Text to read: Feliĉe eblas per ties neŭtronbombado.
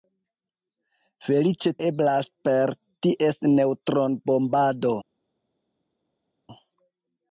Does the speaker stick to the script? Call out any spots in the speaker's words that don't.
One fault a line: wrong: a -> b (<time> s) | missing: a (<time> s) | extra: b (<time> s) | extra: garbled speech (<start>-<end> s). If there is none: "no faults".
no faults